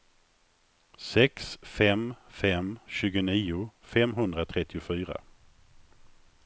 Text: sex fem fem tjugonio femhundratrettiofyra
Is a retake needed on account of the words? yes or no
no